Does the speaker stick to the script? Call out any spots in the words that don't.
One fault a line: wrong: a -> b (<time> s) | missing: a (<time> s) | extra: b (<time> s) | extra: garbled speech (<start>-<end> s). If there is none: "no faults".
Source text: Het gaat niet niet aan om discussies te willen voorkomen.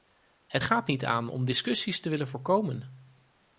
missing: niet (1.0 s)